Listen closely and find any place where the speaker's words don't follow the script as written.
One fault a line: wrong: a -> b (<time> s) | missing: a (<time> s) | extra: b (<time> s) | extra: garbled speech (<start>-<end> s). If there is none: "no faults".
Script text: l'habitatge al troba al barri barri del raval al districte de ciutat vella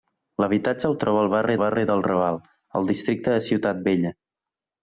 no faults